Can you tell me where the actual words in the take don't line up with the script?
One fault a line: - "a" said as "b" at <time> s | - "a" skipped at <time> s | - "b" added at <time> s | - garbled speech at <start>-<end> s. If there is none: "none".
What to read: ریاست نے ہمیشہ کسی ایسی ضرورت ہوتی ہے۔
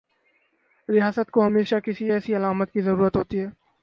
- "نے" said as "کو" at 1.3 s
- "علامت کی" added at 2.4 s